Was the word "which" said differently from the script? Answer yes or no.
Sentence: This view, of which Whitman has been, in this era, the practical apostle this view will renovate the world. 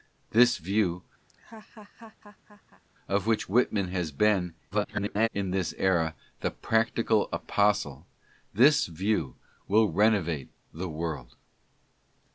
no